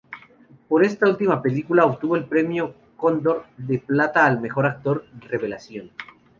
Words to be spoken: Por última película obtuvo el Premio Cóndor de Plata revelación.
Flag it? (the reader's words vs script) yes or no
yes